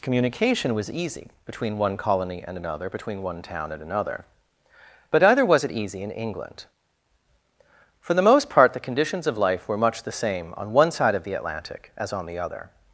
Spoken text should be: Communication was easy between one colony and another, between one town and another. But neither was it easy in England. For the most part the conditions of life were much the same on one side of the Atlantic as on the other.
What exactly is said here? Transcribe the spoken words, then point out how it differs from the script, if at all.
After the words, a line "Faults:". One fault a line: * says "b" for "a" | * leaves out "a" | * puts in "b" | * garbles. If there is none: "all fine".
Communication was easy between one colony and another, between one town and another. But neither was it easy in England. For the most part the conditions of life were much the same on one side of the Atlantic as on the other.
Faults:
all fine